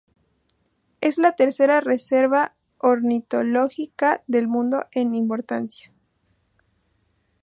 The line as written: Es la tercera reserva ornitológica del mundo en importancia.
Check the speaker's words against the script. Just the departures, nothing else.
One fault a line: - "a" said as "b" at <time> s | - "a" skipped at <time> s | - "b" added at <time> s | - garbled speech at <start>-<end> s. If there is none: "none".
none